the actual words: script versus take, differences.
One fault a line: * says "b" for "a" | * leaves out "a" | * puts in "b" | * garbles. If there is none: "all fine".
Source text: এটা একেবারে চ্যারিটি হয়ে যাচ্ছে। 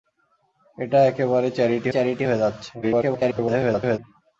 * puts in "চ্যারিটি"
* garbles